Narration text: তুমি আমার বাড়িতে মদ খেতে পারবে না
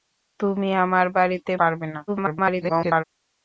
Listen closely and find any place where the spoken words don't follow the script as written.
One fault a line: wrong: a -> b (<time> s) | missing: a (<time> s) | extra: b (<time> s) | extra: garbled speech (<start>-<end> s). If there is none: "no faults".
missing: মদ খেতে (1.5 s)
extra: garbled speech (2.1-3.0 s)